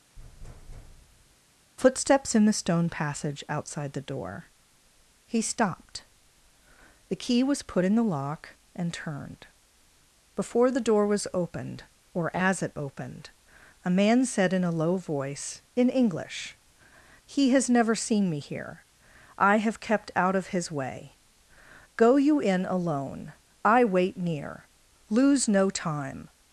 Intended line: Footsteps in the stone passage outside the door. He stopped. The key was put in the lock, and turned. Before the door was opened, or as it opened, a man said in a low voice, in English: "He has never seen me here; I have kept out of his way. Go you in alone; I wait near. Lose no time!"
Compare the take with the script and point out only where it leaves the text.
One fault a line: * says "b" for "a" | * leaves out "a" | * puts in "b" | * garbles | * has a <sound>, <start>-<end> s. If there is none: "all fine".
* has a thud, 0.2-1.4 s